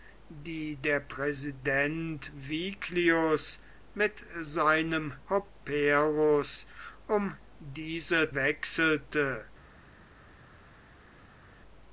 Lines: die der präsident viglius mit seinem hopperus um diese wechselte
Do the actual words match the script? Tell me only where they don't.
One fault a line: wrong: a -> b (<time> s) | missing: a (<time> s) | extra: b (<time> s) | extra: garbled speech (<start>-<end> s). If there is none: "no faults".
no faults